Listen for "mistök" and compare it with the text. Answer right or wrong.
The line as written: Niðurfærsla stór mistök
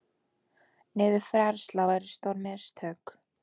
right